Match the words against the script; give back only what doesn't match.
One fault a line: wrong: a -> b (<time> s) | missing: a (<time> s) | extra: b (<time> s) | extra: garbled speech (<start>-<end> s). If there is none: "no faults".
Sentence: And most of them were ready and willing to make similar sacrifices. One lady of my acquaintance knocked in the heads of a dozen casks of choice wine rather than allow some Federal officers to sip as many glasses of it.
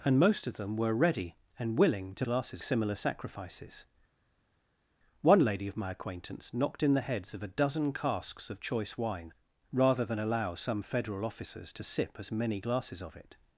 wrong: make -> glasses (2.2 s)